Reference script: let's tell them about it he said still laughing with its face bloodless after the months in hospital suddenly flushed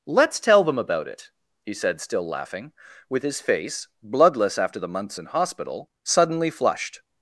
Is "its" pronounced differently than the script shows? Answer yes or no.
yes